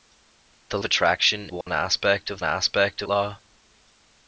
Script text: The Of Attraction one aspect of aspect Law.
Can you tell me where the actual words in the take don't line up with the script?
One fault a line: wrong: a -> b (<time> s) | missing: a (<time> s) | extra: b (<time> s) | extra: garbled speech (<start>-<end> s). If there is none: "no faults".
no faults